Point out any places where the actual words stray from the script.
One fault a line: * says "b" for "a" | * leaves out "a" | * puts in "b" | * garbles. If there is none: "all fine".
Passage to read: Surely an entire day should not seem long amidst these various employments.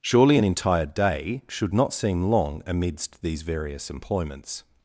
all fine